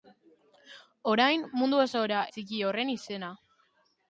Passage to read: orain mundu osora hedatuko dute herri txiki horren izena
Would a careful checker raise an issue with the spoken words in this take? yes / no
yes